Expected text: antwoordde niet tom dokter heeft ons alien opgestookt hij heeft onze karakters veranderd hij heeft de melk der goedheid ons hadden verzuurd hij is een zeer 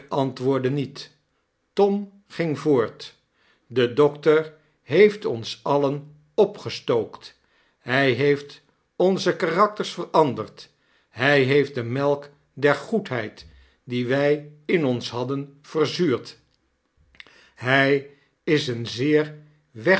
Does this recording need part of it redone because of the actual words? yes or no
yes